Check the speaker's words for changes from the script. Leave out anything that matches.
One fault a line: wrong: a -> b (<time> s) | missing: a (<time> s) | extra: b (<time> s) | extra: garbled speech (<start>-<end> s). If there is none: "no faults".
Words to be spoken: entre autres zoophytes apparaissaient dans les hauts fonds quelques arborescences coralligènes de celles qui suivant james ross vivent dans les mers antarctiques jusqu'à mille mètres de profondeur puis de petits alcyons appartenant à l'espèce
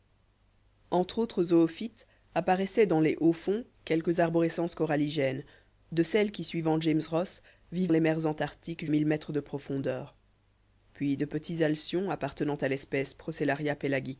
missing: dans (7.9 s)
missing: jusqu'à (8.9 s)